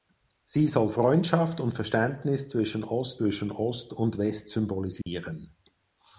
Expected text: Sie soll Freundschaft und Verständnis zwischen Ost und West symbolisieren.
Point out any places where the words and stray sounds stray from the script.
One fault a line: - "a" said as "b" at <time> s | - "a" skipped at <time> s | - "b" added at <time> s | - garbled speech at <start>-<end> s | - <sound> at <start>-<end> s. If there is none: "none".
- "zwischen Ost" added at 3.1 s
- dropout at 5.0-5.1 s